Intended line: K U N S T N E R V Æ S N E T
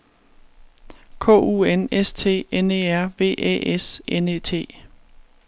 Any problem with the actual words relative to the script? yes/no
no